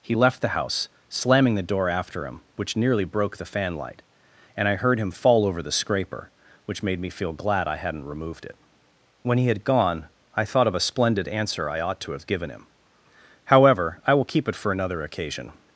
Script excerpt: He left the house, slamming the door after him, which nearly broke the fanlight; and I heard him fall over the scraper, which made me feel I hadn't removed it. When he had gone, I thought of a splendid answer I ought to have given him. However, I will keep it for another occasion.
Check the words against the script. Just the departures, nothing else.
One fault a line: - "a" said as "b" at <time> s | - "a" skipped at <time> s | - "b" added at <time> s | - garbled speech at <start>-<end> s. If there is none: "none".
- "glad" added at 7.3 s